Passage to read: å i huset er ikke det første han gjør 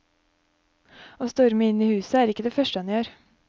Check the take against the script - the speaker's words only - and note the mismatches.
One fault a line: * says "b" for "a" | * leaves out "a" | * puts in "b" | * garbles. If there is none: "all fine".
* puts in "storme inn"